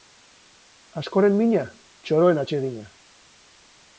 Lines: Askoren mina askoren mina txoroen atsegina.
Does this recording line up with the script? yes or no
no